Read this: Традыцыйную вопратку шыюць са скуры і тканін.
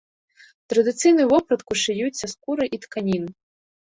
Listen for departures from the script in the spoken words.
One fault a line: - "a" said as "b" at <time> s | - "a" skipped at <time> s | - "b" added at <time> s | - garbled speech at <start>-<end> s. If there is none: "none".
none